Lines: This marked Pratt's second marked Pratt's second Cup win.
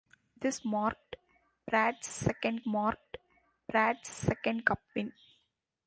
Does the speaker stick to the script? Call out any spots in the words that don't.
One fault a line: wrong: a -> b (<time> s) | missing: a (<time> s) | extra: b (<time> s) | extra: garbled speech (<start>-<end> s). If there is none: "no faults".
no faults